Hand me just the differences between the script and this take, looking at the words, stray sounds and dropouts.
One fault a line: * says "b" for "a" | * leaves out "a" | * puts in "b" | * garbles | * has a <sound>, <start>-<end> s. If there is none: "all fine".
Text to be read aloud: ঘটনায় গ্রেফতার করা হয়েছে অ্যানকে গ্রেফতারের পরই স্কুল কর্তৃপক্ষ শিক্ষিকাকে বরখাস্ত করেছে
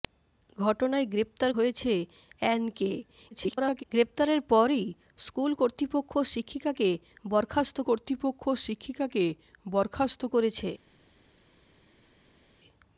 * leaves out "করা"
* garbles
* puts in "কর্তৃপক্ষ শিক্ষিকাকে বরখাস্ত"